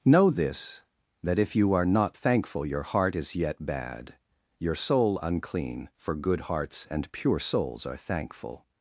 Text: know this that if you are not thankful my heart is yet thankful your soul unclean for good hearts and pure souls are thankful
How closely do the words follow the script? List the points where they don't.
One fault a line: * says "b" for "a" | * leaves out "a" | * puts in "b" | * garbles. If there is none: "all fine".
* says "your" for "my"
* says "bad" for "thankful"